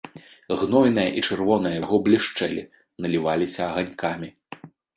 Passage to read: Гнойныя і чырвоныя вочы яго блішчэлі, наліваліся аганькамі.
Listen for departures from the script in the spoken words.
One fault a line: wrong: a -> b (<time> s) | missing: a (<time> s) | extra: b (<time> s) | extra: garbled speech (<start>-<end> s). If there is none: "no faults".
missing: вочы (1.8 s)